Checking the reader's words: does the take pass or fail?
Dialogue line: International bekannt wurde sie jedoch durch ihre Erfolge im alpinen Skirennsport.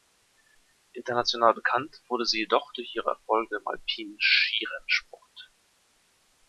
pass